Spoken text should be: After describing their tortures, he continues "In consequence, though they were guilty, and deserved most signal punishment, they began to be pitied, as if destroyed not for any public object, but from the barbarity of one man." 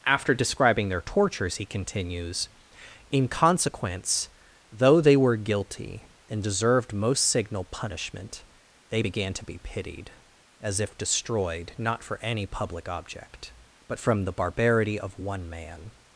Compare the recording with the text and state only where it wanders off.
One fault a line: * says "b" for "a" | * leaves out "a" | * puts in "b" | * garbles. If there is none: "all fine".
all fine